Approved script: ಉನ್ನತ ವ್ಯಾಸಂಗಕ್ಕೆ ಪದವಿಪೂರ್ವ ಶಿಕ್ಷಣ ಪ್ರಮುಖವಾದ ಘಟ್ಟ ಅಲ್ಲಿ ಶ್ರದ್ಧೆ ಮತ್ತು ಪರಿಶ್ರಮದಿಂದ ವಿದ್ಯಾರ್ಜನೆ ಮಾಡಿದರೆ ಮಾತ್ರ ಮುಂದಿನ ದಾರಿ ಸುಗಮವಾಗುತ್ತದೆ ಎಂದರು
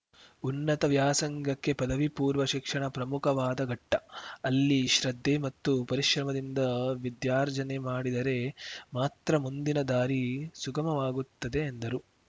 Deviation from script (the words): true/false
false